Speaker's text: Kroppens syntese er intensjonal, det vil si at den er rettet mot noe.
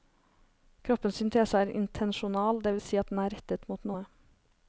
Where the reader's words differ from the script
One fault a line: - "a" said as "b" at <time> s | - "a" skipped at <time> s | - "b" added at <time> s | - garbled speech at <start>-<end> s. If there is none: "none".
none